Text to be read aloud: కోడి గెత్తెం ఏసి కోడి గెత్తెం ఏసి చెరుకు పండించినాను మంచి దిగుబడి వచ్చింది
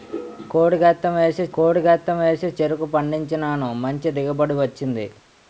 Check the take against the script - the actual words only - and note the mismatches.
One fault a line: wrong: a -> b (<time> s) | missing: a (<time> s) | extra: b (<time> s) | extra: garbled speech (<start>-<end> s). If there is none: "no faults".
no faults